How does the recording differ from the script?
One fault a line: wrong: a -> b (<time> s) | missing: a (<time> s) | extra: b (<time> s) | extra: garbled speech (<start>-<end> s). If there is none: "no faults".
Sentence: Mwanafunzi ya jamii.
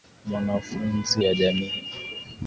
no faults